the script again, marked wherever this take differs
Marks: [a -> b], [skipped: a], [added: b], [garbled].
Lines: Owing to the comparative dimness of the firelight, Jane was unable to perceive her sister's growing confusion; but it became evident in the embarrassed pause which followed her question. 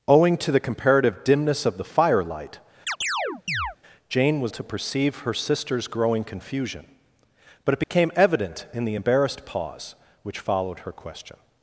Owing to the comparative dimness of the firelight, Jane was [skipped: unable] to perceive her sister's growing confusion; but it became evident in the embarrassed pause which followed her question.